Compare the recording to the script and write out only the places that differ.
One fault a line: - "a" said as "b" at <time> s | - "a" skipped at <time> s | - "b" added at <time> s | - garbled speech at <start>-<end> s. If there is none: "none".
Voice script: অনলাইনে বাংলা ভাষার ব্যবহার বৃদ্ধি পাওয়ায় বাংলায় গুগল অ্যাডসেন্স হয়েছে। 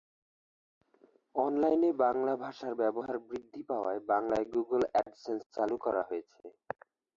- "চালু করা" added at 5.5 s